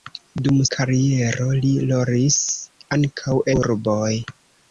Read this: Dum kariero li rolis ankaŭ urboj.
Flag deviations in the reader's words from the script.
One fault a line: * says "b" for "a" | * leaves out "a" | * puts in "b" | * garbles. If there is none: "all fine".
all fine